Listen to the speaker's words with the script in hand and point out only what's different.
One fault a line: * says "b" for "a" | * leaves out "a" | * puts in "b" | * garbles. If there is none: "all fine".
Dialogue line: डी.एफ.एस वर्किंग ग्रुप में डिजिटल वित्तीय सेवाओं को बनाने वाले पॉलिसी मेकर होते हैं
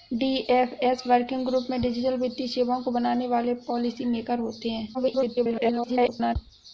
* garbles